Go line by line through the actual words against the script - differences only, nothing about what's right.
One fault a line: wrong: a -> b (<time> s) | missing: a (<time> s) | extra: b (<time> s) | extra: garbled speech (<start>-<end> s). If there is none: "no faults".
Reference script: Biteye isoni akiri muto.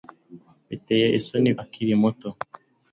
no faults